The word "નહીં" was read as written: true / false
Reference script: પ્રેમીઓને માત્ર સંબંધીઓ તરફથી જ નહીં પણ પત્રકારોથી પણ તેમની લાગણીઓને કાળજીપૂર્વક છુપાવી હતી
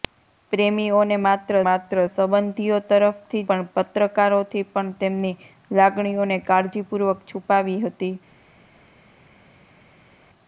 false